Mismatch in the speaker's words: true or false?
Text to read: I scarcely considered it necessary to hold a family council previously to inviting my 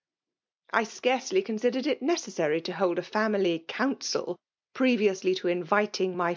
false